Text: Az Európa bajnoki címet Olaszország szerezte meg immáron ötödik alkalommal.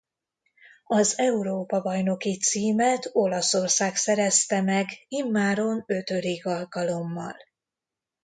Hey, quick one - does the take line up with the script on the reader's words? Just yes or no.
yes